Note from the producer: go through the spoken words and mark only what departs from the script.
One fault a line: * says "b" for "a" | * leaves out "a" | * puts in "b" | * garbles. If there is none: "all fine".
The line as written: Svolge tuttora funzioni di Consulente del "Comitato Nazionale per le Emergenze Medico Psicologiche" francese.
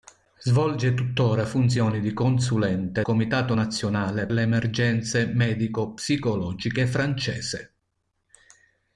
* leaves out "del"
* leaves out "per"